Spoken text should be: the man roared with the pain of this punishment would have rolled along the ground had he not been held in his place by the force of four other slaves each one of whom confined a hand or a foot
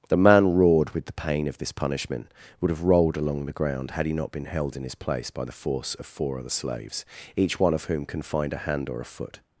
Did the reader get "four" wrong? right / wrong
right